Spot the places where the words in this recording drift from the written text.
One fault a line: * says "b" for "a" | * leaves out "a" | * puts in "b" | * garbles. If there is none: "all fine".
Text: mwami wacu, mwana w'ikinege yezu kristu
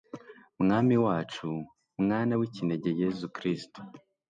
all fine